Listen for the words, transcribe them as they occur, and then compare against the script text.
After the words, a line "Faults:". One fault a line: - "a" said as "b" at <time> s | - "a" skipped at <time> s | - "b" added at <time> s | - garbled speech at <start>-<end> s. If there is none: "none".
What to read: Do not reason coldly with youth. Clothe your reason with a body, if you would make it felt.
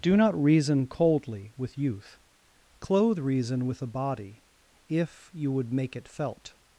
Do not reason coldly with youth. Clothe reason with a body, if you would make it felt.
Faults:
- "your" skipped at 3.2 s